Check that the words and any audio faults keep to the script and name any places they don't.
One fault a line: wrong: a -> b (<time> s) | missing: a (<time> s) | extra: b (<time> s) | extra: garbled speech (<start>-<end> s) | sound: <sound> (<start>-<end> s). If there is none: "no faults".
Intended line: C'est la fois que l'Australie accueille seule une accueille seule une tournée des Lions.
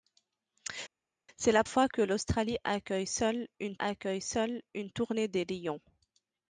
no faults